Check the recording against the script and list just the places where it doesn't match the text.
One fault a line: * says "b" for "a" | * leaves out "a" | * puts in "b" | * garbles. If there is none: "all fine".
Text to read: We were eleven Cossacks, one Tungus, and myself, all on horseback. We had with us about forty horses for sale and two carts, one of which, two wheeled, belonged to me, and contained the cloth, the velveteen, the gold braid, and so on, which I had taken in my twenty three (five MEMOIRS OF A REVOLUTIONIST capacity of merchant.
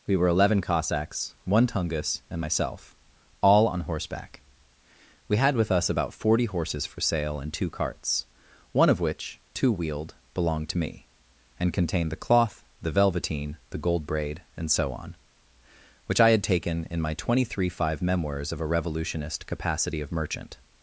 all fine